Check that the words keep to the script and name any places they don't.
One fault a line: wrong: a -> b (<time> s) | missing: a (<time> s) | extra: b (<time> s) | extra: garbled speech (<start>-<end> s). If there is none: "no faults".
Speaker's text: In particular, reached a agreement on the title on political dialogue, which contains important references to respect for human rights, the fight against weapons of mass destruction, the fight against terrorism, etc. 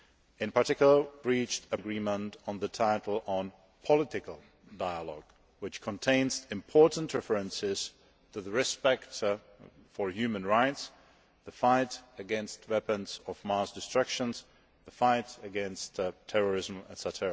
no faults